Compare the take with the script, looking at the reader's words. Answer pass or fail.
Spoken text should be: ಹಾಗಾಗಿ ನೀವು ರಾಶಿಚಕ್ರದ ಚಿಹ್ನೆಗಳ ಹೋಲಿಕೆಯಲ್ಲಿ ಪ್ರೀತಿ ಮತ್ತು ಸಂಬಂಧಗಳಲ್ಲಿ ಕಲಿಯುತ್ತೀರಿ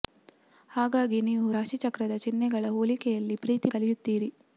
fail